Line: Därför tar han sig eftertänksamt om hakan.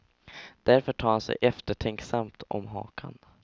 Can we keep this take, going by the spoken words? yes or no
yes